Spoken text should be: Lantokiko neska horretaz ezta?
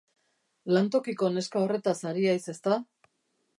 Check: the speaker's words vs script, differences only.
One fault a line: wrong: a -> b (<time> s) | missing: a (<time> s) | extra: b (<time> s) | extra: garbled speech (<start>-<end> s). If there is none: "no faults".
extra: ari haiz (2.1 s)